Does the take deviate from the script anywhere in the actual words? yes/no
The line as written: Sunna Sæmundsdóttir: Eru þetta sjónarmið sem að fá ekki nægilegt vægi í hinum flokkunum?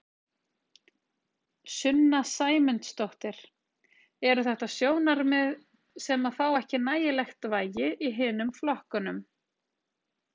no